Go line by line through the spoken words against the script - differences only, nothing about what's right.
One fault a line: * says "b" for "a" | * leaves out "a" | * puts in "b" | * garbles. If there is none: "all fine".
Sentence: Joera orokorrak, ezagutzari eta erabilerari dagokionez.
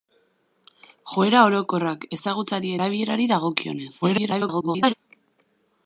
* leaves out "eta"
* garbles